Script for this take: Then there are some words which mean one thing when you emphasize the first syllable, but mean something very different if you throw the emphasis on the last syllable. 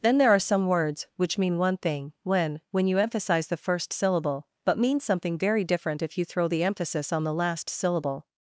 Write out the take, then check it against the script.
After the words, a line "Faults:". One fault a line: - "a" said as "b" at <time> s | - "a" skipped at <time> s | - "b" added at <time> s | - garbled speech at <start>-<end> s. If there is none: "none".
Then there are some words which mean one thing when when you emphasize the first syllable, but mean something very different if you throw the emphasis on the last syllable.
Faults:
- "when" added at 2.7 s